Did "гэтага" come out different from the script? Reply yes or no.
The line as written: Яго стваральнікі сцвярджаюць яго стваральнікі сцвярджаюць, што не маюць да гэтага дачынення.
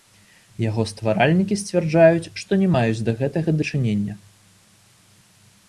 no